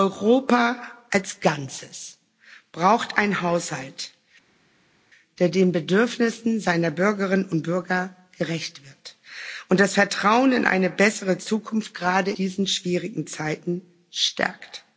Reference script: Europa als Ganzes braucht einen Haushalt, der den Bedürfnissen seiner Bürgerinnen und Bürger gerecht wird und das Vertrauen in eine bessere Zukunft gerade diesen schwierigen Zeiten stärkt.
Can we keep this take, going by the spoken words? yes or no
yes